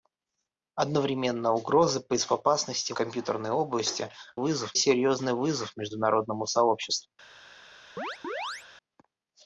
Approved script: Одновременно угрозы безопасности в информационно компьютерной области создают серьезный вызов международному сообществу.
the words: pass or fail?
fail